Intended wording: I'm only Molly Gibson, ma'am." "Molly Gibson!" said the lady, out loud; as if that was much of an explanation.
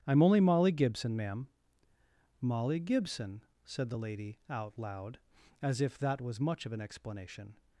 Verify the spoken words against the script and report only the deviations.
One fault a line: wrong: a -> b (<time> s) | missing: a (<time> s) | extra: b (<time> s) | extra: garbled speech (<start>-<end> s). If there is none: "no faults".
no faults